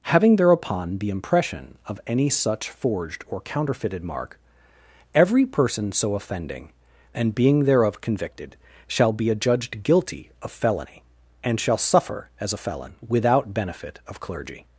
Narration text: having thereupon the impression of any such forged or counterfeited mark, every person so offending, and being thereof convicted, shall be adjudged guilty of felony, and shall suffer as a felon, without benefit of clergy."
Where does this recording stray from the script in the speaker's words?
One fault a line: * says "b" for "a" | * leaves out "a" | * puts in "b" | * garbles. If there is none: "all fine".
all fine